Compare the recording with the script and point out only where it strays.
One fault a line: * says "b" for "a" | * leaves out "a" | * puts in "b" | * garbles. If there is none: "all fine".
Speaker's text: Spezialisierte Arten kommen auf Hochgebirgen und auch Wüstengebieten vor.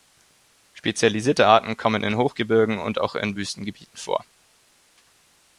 * says "in" for "auf"
* puts in "in"